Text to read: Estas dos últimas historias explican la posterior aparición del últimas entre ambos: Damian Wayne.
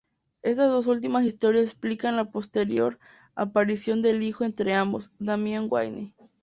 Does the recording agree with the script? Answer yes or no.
no